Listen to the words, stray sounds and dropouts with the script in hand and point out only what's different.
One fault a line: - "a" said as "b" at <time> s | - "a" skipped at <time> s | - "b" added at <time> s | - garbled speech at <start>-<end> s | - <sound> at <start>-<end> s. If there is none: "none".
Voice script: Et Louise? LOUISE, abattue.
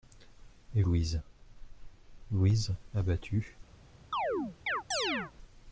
- chirp at 4.1-5.3 s